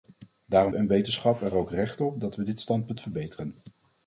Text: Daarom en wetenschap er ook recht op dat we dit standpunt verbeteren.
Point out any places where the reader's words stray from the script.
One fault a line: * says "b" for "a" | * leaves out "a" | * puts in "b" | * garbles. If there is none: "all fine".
all fine